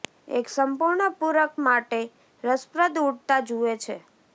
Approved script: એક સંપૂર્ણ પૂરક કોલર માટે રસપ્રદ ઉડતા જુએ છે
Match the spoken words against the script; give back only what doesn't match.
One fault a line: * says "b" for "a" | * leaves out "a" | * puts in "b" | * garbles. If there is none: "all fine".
* leaves out "કોલર"